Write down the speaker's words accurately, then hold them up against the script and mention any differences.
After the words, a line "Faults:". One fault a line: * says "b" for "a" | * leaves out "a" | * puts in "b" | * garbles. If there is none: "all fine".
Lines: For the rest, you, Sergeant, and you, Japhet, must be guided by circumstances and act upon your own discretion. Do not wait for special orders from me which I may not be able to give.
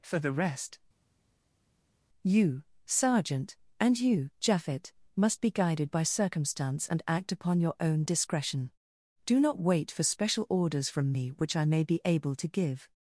For the rest, you, Sergeant, and you, Japhet, must be guided by circumstance and act upon your own discretion. Do not wait for special orders from me which I may be able to give.
Faults:
* says "circumstance" for "circumstances"
* leaves out "not"